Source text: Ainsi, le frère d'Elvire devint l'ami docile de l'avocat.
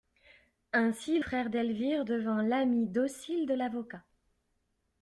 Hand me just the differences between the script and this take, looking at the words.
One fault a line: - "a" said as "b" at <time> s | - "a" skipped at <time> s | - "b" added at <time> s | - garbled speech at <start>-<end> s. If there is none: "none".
- "le" skipped at 1.2 s